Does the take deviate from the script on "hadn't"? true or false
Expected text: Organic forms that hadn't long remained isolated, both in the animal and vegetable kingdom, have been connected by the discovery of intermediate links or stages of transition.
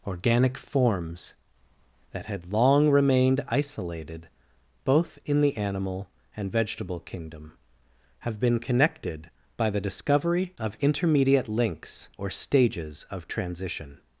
true